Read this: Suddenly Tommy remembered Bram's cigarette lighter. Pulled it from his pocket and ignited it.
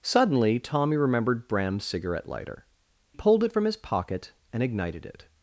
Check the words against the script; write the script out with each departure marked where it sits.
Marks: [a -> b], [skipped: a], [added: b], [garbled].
Suddenly Tommy remembered Bram's cigarette lighter. Pulled it from his pocket and ignited it.